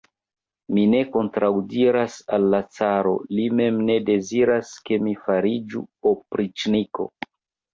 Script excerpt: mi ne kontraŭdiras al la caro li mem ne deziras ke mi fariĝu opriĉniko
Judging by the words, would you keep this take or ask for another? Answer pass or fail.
pass